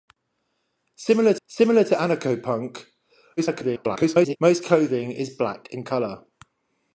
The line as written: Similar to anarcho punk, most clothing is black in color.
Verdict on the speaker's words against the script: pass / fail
fail